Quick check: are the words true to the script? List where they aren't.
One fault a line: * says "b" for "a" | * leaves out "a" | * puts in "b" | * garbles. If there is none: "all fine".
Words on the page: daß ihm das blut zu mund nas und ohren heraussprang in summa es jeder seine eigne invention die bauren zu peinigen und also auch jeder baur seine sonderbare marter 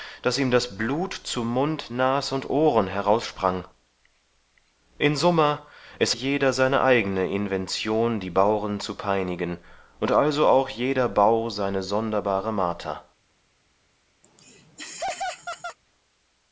all fine